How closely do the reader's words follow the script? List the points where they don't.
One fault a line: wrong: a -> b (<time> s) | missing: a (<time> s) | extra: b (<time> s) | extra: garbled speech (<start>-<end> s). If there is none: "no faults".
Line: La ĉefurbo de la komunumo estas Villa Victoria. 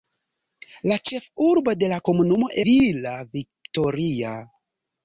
missing: estas (2.5 s)